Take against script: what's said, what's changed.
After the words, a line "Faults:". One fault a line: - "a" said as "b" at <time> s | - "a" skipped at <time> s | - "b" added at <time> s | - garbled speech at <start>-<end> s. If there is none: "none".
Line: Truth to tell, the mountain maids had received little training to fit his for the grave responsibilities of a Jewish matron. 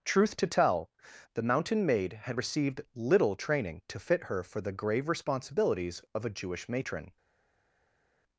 Truth to tell, the mountain maid had received little training to fit her for the grave responsibilities of a Jewish matron.
Faults:
- "maids" said as "maid" at 1.9 s
- "his" said as "her" at 4.3 s